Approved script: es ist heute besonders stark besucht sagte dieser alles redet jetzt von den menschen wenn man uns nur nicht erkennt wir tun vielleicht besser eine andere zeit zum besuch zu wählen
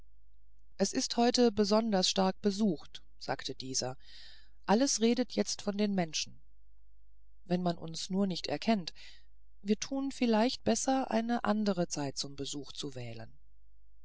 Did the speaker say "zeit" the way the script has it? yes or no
yes